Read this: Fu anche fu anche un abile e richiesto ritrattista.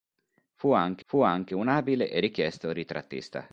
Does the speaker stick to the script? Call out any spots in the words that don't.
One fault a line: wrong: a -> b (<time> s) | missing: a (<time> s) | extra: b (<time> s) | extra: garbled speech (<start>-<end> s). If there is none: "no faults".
no faults